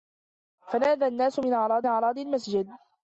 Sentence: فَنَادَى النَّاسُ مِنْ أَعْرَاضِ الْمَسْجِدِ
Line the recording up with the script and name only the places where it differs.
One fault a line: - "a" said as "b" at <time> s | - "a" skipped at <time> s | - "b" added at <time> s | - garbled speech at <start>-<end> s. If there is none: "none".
- "أَعْرَاضِ" added at 1.9 s